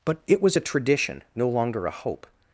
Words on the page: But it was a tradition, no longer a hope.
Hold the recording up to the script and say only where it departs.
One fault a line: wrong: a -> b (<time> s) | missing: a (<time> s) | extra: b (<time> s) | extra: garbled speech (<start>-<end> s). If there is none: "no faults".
no faults